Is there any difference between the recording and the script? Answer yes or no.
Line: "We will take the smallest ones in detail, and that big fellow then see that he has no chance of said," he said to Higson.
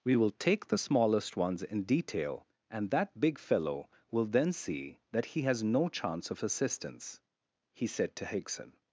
yes